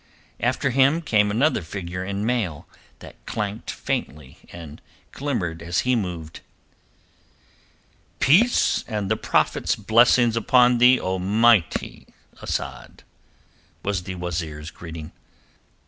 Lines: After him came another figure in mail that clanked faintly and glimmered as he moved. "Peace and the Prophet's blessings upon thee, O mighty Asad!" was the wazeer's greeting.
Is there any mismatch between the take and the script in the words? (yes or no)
no